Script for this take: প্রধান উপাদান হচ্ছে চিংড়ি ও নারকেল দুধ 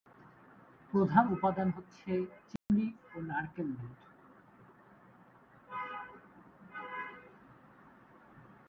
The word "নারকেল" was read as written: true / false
true